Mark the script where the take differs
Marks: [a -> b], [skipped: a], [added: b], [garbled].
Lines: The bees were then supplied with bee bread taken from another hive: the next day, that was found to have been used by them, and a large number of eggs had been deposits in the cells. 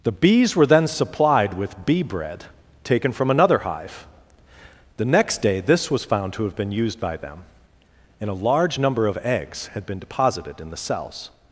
The bees were then supplied with bee bread taken from another hive: the next day, [that -> this] was found to have been used by them, and a large number of eggs had been [deposits -> deposited] in the cells.